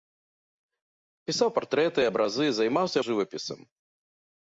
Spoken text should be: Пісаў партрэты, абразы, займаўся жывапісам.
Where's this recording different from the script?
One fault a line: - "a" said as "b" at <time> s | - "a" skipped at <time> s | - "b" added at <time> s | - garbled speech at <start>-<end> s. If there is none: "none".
none